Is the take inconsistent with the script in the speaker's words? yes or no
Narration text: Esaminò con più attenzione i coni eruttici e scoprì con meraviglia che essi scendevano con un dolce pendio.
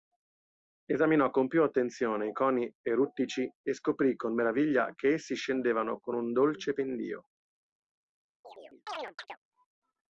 no